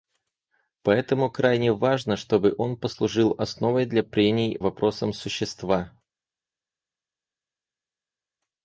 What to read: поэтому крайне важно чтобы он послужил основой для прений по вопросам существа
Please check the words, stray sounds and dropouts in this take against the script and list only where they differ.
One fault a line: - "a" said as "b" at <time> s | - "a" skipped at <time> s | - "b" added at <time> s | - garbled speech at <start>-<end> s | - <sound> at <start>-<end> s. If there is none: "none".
- "по" skipped at 4.6 s